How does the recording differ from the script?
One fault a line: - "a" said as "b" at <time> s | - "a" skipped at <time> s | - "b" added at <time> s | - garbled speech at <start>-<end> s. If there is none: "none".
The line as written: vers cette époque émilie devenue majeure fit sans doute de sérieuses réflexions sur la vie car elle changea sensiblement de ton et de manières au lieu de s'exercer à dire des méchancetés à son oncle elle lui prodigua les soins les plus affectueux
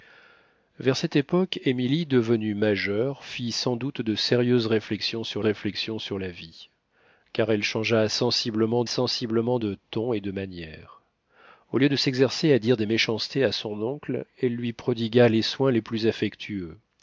- "réflexions sur" added at 5.4 s
- "sensiblement" added at 8.9 s